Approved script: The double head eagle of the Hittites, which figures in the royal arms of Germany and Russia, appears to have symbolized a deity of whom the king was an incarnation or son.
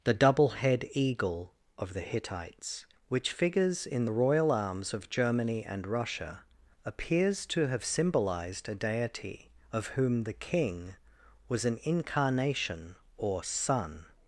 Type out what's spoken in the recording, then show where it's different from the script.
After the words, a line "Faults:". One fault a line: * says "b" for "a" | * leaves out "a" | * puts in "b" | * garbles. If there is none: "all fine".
The double head eagle of the Hittites, which figures in the royal arms of Germany and Russia, appears to have symbolized a deity of whom the king was an incarnation or son.
Faults:
all fine